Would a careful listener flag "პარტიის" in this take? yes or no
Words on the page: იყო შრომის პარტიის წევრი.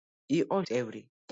yes